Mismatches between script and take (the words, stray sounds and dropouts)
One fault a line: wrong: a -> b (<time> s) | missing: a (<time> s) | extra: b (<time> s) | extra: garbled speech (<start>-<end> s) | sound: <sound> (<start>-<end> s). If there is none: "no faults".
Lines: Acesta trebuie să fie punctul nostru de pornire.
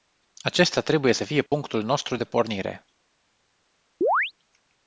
sound: dropout (1.5-1.5 s)
sound: chirp (4.0-4.3 s)